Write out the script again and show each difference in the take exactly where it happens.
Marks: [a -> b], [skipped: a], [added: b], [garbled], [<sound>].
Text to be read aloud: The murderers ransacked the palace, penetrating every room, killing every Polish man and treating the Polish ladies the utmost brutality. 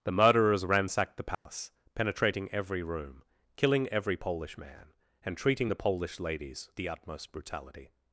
The murderers ransacked the palace, [dropout] penetrating every room, killing every Polish man and treating the Polish ladies the utmost brutality.